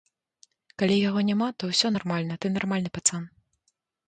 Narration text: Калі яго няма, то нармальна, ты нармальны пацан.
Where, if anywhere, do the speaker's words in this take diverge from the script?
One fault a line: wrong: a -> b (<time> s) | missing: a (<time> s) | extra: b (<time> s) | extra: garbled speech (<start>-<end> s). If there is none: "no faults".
extra: ўсё (1.7 s)